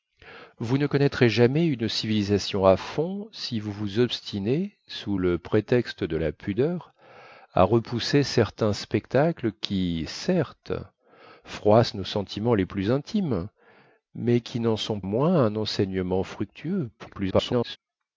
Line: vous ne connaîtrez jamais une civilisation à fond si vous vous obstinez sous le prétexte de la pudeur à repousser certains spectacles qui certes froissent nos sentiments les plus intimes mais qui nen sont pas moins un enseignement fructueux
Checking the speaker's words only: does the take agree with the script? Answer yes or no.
no